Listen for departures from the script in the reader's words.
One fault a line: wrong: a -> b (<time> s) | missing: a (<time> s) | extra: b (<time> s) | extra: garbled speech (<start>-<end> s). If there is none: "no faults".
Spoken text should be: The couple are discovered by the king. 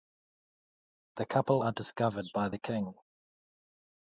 no faults